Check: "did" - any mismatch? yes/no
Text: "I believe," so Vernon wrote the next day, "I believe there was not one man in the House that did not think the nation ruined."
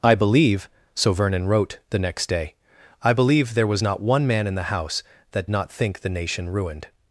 yes